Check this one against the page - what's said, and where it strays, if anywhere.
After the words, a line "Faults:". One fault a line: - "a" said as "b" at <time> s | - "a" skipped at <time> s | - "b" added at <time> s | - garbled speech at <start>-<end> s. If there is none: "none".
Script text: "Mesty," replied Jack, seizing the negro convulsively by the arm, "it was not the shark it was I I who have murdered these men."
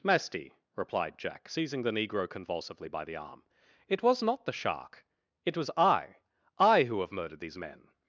"Mesty," replied Jack, seizing the negro convulsively by the arm, "it was not the shark it was I I who have murdered these men."
Faults:
none